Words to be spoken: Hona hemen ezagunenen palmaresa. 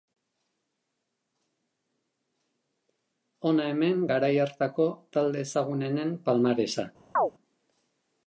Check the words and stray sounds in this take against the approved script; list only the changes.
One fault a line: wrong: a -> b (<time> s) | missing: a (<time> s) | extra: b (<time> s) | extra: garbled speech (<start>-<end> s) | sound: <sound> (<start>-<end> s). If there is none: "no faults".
extra: garai hartako talde (4.1 s)
sound: chirp (7.2-7.3 s)